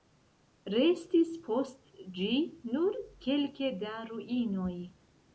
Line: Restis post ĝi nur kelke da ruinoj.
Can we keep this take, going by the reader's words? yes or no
yes